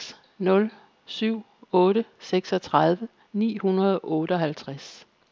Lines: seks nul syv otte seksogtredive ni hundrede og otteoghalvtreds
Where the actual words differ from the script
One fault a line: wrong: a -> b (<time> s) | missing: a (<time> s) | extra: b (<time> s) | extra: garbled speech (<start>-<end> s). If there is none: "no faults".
no faults